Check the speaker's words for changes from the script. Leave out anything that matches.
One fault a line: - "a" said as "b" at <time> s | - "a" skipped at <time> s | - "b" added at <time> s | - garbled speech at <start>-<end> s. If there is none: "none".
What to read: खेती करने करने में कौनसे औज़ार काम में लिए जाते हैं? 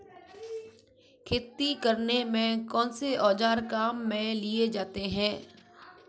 - "करने" skipped at 2.2 s